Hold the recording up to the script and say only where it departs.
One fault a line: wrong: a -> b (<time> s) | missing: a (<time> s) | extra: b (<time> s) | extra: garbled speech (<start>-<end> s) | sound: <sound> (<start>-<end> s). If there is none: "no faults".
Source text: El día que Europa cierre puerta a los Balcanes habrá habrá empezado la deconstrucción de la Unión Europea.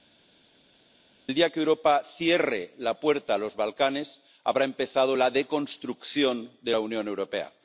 extra: la (2.8 s)
missing: habrá (4.6 s)